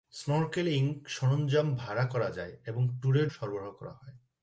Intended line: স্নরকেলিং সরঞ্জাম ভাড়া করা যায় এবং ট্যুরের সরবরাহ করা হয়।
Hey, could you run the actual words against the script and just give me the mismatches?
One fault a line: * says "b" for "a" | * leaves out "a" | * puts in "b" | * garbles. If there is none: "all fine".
all fine